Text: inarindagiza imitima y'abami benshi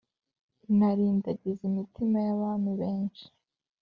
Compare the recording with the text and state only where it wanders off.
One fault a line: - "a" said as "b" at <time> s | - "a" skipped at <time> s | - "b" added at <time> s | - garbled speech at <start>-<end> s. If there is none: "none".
none